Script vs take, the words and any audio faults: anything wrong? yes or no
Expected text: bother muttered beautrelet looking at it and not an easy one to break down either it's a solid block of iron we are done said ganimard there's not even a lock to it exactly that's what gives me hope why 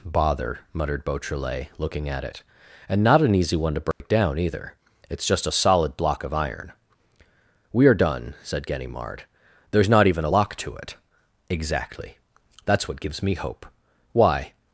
yes